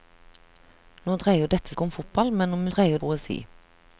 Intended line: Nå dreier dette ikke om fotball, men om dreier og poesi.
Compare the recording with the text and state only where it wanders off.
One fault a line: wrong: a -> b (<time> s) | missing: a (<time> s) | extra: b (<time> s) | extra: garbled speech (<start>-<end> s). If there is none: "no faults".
no faults